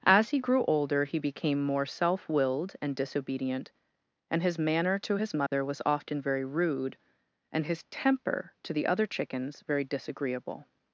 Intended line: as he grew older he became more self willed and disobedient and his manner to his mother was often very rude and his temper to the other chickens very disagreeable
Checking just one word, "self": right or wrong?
right